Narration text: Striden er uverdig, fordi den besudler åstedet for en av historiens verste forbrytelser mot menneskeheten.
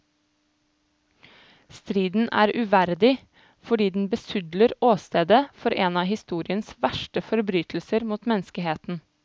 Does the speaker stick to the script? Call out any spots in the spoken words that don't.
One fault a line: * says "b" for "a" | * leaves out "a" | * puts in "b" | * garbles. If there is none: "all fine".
all fine